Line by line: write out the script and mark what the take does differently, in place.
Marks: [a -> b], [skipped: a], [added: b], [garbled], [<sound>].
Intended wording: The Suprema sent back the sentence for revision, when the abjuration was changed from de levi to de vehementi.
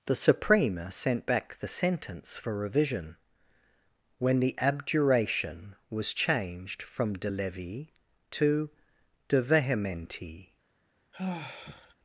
The Suprema sent back the sentence for revision, when the abjuration was changed from de levi to de vehementi. [sigh]